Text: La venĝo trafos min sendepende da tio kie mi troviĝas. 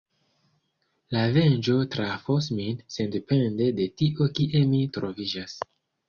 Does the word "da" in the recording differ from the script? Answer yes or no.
yes